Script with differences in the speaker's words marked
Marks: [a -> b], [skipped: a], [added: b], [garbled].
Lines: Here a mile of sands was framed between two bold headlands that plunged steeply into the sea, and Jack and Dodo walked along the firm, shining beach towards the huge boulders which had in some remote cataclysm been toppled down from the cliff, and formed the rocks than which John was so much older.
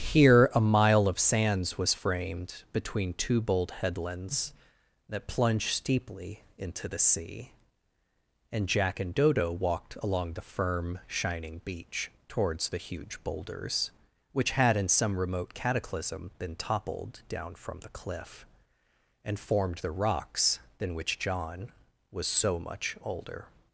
Here a mile of sands was framed between two bold headlands that plunged steeply into the sea, and Jack and Dodo walked along the firm, shining beach towards the huge boulders which had in some remote cataclysm been toppled down from the cliff, and formed the rocks than which John was so much older.